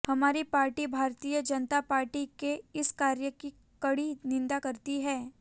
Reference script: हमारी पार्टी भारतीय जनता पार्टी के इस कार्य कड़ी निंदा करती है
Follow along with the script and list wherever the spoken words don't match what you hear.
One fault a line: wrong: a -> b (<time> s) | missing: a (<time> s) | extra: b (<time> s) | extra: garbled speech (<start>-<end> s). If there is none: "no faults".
extra: की (3.3 s)